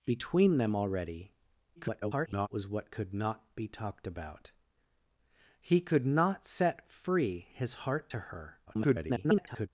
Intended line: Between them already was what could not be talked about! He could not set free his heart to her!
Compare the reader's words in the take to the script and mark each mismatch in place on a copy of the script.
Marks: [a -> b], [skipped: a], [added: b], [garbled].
Between them already [garbled] was what could not be talked about! He could not set free his heart to her! [garbled]